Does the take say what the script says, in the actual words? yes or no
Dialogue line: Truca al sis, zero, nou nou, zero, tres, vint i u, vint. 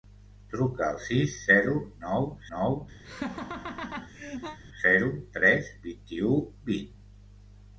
yes